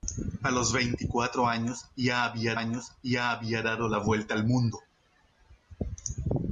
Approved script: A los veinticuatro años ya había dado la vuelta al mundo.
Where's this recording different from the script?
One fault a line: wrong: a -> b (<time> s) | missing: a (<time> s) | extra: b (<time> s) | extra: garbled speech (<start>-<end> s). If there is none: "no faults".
extra: años ya había (2.5 s)